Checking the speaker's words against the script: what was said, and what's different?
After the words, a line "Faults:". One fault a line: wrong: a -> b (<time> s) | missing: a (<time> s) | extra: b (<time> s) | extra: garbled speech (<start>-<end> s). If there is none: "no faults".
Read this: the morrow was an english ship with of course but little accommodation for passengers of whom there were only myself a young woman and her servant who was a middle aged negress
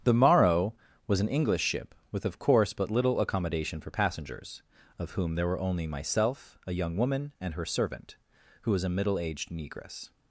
the morrow was an english ship with of course but little accommodation for passengers of whom there were only myself a young woman and her servant who was a middle aged negress
Faults:
no faults